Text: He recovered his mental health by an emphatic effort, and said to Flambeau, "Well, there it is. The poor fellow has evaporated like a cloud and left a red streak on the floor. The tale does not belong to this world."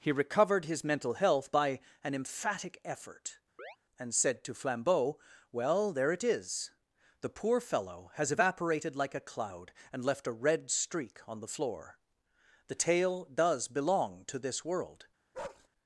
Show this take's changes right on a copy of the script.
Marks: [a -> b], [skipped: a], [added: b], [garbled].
He recovered his mental health by an emphatic effort, and said to Flambeau, "Well, there it is. The poor fellow has evaporated like a cloud and left a red streak on the floor. The tale does [skipped: not] belong to this world."